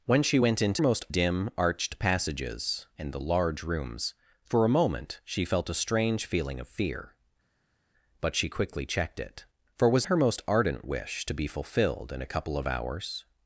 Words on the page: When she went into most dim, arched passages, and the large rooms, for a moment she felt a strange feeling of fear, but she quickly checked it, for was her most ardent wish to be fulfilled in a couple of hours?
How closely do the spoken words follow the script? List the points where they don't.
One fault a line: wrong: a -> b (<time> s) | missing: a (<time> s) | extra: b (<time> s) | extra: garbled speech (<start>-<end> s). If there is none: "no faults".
no faults